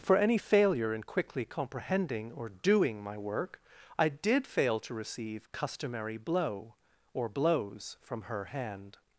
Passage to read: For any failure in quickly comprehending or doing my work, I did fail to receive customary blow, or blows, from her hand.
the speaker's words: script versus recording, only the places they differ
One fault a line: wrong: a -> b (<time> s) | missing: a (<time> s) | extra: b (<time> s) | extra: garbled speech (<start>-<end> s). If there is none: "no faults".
no faults